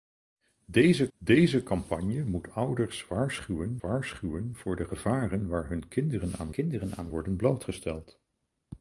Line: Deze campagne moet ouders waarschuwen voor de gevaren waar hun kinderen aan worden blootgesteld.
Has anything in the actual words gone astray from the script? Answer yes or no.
yes